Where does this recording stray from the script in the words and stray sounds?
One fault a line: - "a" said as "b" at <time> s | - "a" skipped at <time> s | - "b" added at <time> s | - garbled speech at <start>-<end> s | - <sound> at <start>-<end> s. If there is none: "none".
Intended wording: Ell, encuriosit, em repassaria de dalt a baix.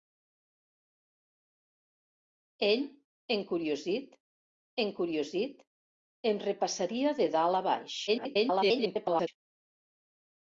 - "encuriosit" added at 4.8 s
- garbled speech at 8.1-9.3 s